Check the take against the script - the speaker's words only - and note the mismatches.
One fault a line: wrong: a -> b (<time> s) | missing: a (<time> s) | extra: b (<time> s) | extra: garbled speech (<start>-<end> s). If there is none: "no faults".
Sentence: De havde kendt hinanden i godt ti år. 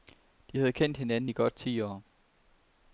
no faults